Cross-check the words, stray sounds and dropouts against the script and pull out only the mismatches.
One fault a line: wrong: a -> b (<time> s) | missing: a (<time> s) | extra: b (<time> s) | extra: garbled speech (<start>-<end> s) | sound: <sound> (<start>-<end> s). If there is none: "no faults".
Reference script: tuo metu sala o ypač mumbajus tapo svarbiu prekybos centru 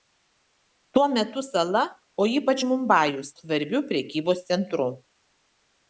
missing: tapo (3.3 s)